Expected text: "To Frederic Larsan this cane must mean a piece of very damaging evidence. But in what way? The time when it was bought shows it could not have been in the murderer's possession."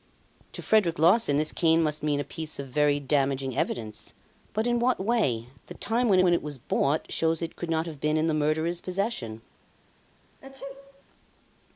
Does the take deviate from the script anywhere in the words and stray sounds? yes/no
yes